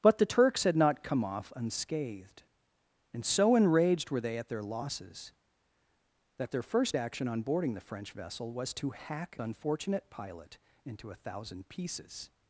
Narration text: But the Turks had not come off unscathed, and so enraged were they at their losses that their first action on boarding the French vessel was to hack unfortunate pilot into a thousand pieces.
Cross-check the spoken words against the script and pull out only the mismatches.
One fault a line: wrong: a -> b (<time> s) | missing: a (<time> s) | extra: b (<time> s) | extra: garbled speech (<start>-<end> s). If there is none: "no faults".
no faults